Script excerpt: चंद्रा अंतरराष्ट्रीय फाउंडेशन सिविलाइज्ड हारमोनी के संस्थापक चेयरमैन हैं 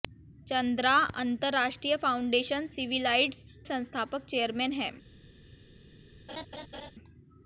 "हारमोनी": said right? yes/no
no